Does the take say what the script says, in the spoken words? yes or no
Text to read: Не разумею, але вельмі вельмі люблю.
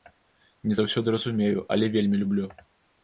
no